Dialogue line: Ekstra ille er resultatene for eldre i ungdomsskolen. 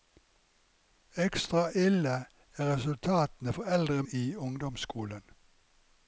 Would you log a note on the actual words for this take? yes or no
no